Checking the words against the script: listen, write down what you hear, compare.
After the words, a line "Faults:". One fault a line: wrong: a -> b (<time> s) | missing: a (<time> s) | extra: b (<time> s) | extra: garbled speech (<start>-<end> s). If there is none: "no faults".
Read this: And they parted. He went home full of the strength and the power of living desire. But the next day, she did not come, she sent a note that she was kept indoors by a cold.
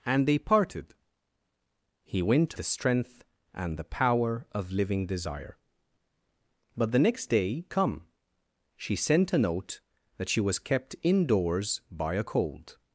And they parted. He went the strength and the power of living desire. But the next day, come, she sent a note that she was kept indoors by a cold.
Faults:
missing: home full of (2.5 s)
missing: she did not (7.7 s)